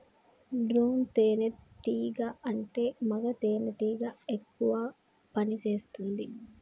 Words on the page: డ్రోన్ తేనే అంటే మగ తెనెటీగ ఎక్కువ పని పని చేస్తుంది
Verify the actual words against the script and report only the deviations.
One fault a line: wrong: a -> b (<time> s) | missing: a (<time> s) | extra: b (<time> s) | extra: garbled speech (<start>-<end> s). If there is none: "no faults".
extra: టీగా (1.8 s)
missing: పని (5.6 s)